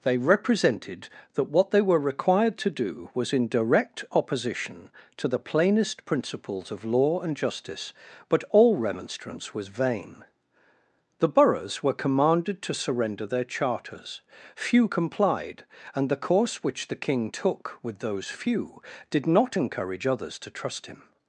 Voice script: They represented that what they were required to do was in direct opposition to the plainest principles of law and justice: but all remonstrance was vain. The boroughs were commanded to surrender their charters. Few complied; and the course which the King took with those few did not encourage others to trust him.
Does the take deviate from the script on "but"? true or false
false